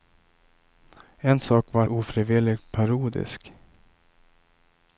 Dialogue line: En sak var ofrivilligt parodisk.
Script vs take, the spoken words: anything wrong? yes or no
no